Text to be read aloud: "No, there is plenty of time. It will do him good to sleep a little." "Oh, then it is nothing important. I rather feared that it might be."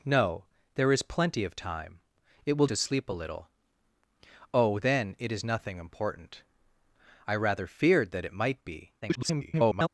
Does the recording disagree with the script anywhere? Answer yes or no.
yes